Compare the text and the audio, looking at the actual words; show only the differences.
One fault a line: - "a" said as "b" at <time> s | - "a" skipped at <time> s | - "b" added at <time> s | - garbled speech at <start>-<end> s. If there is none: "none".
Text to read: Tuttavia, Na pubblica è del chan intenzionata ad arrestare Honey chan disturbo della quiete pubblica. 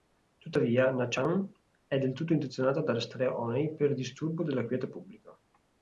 - "pubblica" said as "chan" at 1.1 s
- "chan" said as "tutto" at 2.1 s
- "chan" said as "per" at 3.8 s